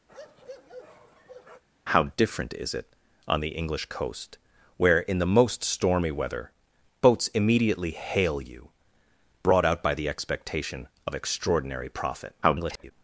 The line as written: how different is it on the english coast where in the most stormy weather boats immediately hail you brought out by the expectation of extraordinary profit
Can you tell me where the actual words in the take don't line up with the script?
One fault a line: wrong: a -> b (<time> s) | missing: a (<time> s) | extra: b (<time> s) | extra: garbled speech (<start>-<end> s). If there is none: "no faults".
extra: garbled speech (12.4-12.9 s)